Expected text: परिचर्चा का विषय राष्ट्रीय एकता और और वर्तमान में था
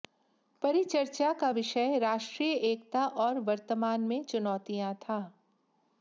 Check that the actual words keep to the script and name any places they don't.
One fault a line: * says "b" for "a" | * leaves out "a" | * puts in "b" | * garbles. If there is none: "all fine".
* leaves out "और"
* puts in "चुनौतियां"